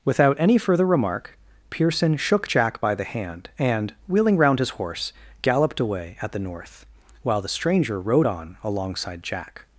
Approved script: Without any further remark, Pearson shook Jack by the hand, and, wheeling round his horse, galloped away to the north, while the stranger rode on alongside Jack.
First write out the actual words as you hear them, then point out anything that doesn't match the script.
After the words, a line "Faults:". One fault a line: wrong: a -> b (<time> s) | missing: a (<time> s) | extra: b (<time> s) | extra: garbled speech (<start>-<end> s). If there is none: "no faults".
Without any further remark, Pearson shook Jack by the hand, and, wheeling round his horse, galloped away at the north, while the stranger rode on alongside Jack.
Faults:
wrong: to -> at (6.2 s)